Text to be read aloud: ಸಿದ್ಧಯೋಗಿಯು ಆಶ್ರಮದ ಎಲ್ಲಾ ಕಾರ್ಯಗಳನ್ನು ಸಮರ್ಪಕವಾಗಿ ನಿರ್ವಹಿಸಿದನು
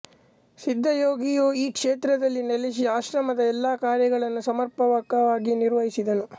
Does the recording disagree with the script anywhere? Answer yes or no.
yes